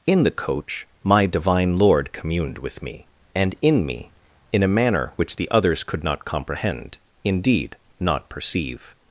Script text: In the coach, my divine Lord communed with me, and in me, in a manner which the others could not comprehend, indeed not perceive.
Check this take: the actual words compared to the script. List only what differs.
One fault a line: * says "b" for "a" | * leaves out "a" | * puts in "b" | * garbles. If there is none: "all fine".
all fine